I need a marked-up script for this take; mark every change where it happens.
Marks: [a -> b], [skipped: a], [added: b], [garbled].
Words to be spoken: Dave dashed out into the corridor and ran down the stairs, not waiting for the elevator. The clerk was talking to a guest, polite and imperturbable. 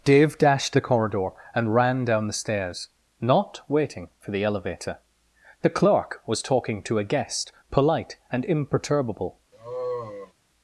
Dave dashed [skipped: out into] the corridor and ran down the stairs, not waiting for the elevator. The clerk was talking to a guest, polite and imperturbable.